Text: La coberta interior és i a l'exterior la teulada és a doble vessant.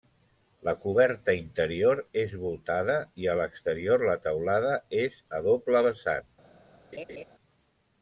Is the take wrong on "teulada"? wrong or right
right